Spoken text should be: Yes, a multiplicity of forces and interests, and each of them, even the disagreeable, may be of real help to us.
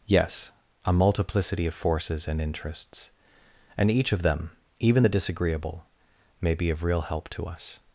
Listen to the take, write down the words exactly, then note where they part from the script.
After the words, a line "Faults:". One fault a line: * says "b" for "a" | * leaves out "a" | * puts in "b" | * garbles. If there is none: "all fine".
Yes, a multiplicity of forces and interests, and each of them, even the disagreeable, may be of real help to us.
Faults:
all fine